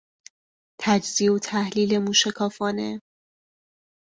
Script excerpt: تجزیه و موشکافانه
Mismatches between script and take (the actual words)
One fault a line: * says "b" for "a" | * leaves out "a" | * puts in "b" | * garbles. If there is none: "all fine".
* puts in "تحلیل"